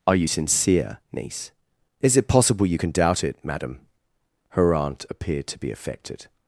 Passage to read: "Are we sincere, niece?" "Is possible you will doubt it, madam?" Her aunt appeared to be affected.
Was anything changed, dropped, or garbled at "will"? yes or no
yes